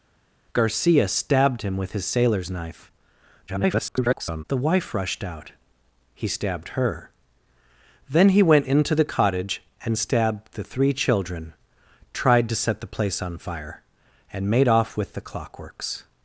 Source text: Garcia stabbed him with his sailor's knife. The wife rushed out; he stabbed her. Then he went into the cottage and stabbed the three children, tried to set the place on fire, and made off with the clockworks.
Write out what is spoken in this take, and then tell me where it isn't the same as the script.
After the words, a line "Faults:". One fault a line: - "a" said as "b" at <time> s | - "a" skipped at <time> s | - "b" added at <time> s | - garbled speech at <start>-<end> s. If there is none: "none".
Garcia stabbed him with his sailor's knife. [garbled] The wife rushed out; he stabbed her. Then he went into the cottage and stabbed the three children, tried to set the place on fire, and made off with the clockworks.
Faults:
- garbled speech at 3.5-4.4 s